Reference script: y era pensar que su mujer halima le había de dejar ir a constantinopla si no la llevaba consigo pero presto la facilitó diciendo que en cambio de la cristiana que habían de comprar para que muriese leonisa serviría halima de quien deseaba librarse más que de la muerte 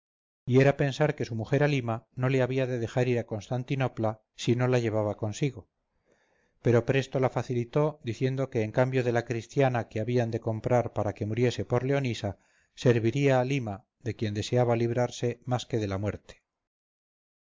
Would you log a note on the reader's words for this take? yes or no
yes